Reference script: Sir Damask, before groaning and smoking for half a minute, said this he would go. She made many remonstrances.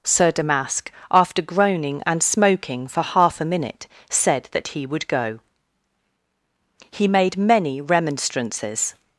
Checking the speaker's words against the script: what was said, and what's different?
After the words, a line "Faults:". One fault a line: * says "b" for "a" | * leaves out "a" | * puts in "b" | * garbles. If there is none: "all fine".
Sir Damask, after groaning and smoking for half a minute, said that he would go. He made many remonstrances.
Faults:
* says "after" for "before"
* says "that" for "this"
* says "He" for "She"